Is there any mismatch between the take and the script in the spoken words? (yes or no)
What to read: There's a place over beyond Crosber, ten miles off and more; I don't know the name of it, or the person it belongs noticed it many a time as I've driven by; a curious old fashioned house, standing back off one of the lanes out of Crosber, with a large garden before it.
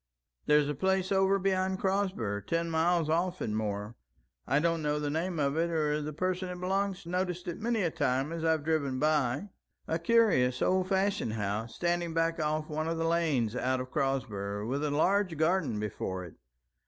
no